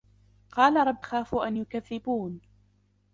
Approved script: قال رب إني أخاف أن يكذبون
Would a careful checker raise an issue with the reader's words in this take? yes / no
yes